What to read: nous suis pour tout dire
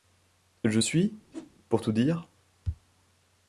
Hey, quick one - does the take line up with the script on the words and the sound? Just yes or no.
no